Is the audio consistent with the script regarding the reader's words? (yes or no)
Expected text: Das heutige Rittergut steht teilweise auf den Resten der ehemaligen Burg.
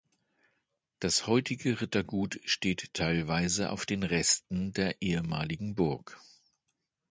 yes